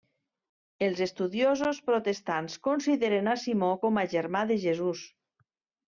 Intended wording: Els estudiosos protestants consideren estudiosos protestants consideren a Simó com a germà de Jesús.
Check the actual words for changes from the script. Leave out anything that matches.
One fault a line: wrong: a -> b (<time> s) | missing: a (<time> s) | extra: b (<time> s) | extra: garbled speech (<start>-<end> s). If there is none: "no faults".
missing: estudiosos protestants consideren (3.3 s)